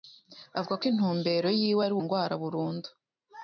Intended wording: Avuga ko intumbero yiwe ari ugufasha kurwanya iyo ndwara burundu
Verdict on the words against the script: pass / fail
fail